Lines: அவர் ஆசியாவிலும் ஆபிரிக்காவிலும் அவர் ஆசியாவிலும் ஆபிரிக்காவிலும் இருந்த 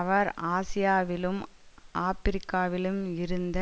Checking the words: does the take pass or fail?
fail